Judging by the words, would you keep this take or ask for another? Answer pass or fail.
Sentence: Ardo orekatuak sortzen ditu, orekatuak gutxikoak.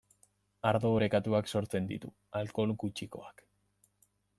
fail